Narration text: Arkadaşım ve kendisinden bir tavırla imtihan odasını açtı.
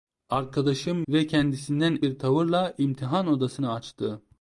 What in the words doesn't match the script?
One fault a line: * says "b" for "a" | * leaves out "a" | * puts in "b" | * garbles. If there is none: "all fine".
all fine